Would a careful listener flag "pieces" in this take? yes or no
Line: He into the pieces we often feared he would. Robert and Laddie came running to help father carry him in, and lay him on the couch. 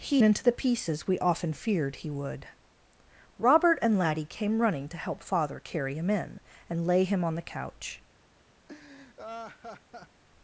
no